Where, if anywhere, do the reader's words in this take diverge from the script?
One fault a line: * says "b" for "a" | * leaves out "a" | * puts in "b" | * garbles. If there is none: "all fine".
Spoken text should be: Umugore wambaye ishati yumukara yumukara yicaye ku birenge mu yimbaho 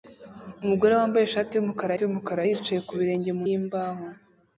all fine